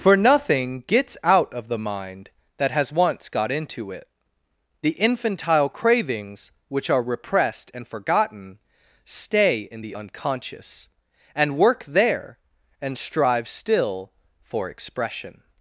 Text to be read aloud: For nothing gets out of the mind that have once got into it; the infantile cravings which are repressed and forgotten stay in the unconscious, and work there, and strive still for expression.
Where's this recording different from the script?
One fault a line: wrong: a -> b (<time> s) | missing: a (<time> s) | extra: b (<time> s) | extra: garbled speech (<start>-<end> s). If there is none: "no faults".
wrong: have -> has (2.7 s)